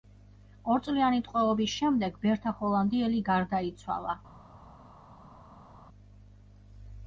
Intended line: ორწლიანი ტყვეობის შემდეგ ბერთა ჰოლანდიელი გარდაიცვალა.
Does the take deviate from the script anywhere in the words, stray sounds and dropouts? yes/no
no